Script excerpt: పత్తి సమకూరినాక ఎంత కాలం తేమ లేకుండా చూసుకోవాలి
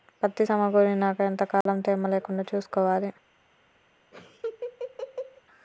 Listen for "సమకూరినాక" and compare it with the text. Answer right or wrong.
right